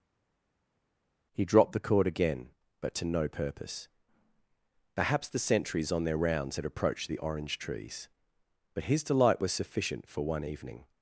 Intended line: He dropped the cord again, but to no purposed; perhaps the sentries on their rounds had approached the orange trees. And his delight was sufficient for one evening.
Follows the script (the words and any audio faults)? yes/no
no